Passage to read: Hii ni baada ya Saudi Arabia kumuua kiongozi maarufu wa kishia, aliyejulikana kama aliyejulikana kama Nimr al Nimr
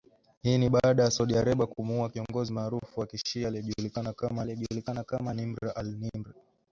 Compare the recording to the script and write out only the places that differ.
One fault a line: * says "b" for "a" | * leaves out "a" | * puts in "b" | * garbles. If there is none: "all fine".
all fine